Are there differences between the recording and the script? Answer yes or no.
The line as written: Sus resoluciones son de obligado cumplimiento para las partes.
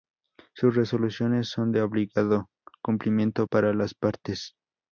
no